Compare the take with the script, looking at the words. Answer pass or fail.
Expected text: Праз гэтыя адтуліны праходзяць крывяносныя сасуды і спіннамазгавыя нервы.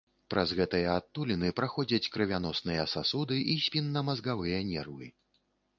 pass